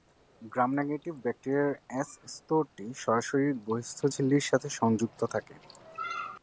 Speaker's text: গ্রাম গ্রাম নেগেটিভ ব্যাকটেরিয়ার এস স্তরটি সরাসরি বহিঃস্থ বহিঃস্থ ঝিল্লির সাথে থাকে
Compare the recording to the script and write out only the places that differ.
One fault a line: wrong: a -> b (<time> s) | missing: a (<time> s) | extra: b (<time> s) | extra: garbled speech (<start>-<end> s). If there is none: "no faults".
missing: গ্রাম (0.7 s)
missing: বহিঃস্থ (4.0 s)
extra: সংযুক্ত (4.8 s)